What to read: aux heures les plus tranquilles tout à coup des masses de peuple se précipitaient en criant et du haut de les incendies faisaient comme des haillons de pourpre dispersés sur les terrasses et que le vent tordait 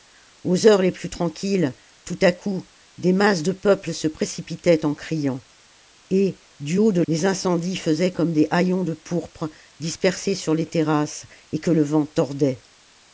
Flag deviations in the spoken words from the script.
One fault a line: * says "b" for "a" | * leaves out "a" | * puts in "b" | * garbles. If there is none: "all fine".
all fine